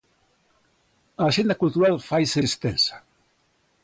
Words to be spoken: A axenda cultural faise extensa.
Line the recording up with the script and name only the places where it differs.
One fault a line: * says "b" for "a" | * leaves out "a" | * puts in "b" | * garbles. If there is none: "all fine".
all fine